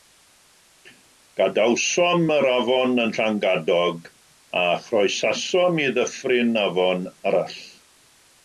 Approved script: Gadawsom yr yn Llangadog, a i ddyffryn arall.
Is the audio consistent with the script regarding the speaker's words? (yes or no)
no